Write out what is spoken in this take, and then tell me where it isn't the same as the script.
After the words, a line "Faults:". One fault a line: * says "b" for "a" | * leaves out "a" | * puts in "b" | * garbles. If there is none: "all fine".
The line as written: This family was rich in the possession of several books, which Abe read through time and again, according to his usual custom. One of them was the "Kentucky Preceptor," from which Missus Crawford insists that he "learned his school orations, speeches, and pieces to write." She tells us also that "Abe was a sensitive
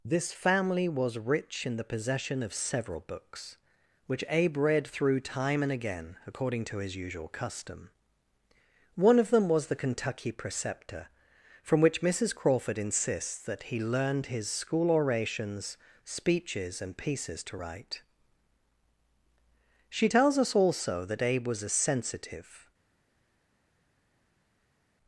This family was rich in the possession of several books, which Abe read through time and again, according to his usual custom. One of them was the "Kentucky Preceptor," from which Missus Crawford insists that he "learned his school orations, speeches, and pieces to write." She tells us also that "Abe was a sensitive
Faults:
all fine